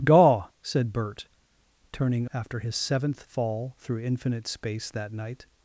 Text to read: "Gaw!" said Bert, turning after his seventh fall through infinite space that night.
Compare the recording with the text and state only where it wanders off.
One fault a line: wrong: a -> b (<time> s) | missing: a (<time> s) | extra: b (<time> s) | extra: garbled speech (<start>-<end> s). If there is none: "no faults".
no faults